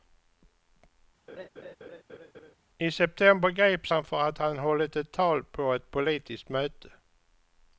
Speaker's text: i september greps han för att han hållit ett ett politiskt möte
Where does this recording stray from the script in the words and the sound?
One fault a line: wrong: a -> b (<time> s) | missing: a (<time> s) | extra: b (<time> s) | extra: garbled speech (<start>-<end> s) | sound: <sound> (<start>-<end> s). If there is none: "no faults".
sound: laugh (1.3-2.5 s)
extra: tal på (5.1 s)